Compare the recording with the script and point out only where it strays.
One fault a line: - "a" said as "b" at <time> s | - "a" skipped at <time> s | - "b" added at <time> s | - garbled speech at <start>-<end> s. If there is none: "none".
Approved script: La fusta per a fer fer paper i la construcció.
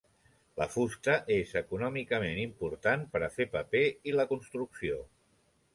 - "és econòmicament important" added at 1.4 s
- "fer" skipped at 3.5 s